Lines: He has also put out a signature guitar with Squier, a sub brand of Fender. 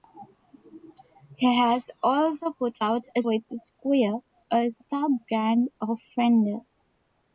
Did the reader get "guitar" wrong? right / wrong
wrong